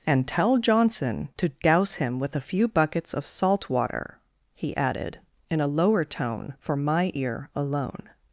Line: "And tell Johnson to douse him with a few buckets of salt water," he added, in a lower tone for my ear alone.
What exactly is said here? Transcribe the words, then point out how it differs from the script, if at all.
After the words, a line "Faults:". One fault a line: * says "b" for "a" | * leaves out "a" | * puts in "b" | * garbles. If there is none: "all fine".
"And tell Johnson to douse him with a few buckets of salt water," he added, in a lower tone for my ear alone.
Faults:
all fine